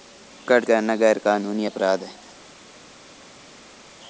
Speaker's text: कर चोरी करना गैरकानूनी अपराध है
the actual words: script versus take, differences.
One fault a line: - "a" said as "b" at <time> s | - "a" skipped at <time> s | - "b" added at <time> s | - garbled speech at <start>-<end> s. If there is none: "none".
- "चोरी" skipped at 0.6 s